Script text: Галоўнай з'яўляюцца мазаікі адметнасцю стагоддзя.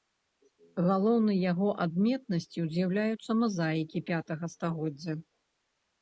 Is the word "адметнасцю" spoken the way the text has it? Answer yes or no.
no